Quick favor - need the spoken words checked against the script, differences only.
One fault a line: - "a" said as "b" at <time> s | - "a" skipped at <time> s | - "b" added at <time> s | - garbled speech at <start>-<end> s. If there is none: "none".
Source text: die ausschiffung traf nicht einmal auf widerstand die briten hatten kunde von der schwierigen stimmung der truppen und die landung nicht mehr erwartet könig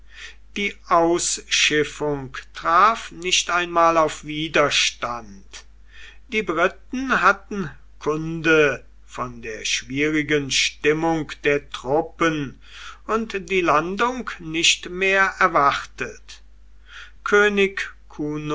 none